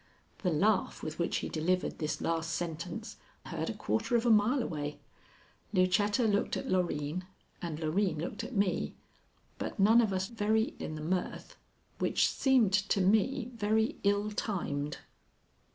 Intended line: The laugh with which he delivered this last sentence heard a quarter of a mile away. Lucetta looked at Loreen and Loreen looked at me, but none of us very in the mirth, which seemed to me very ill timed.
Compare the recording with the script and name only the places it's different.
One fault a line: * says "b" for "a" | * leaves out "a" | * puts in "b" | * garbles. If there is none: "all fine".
all fine